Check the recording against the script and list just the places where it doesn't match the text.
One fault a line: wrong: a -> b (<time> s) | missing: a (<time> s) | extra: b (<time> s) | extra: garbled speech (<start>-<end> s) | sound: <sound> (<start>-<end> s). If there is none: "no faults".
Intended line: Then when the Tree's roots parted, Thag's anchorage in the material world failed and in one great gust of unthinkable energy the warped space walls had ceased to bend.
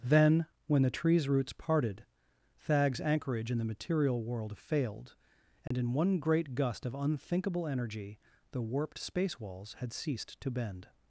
sound: dropout (5.7-5.7 s)